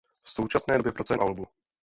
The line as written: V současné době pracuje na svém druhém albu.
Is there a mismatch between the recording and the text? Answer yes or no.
yes